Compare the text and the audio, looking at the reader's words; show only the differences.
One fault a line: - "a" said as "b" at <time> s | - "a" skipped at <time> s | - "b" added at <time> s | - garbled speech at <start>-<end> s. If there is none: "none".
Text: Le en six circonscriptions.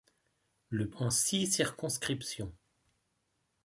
none